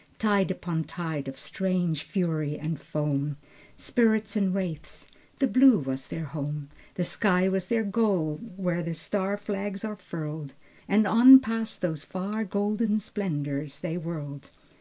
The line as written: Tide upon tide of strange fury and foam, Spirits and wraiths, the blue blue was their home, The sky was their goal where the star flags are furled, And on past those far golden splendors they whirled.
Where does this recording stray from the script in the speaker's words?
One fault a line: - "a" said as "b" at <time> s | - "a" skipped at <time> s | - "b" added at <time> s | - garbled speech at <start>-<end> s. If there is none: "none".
- "blue" skipped at 5.8 s